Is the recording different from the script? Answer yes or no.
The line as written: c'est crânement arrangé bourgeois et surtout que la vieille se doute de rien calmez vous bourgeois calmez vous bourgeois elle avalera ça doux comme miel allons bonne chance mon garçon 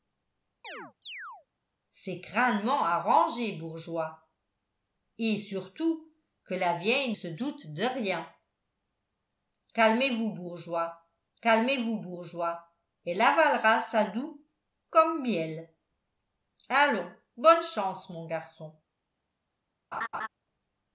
no